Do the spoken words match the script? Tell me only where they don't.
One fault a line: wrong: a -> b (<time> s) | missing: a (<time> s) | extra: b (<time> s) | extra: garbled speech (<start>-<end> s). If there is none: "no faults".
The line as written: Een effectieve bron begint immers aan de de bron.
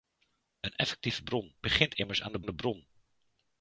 no faults